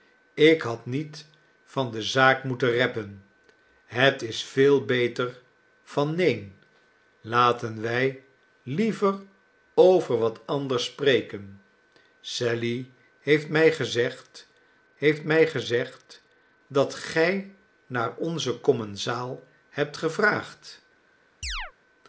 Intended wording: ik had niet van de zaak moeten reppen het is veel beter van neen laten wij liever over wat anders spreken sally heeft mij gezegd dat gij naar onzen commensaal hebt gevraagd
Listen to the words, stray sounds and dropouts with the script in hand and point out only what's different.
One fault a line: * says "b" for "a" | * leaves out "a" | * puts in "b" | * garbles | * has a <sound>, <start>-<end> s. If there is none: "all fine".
* puts in "heeft mij gezegd"
* has a chirp, 21.4-21.7 s